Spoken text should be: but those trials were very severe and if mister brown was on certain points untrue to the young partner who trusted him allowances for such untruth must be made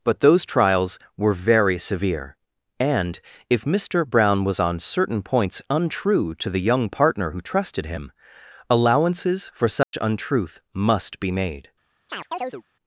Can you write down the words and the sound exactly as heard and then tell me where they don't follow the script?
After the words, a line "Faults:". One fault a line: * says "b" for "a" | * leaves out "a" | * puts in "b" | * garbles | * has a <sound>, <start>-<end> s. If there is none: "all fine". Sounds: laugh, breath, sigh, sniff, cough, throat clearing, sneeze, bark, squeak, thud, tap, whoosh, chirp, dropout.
but those trials were very severe and if mister brown was on certain points untrue to the young partner who trusted him allowances for such untruth must be made
Faults:
* has a dropout, 9.8-9.9 s
* has a chirp, 12.1-12.6 s